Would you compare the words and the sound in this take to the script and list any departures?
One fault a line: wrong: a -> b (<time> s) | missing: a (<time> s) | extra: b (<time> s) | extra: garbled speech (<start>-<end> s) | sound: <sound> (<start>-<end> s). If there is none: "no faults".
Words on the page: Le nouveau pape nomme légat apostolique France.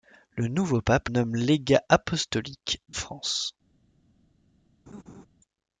sound: laugh (4.9-5.3 s)